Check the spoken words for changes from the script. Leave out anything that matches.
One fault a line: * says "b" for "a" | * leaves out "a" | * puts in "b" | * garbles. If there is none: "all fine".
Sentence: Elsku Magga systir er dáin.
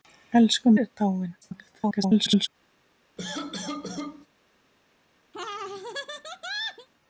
* leaves out "Magga systir"
* garbles